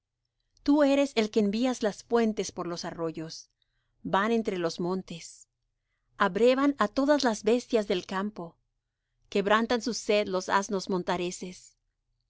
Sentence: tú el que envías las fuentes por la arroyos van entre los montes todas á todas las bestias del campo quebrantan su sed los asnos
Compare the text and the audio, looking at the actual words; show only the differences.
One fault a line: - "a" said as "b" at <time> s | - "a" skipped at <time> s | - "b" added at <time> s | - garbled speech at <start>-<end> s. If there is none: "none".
- "eres" added at 0.8 s
- "la" said as "los" at 2.7 s
- "todas" said as "abrevan" at 6.2 s